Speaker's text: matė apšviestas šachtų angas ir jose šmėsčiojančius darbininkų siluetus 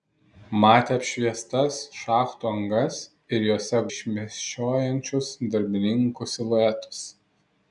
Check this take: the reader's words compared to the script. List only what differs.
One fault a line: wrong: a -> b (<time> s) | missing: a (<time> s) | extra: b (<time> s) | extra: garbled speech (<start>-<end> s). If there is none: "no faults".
no faults